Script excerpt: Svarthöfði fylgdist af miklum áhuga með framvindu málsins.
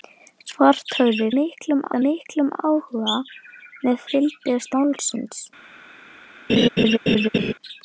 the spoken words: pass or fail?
fail